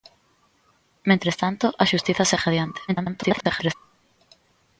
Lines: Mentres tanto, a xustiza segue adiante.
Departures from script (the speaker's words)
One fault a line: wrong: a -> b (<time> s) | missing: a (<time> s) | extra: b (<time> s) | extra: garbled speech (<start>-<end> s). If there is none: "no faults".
extra: garbled speech (2.9-3.7 s)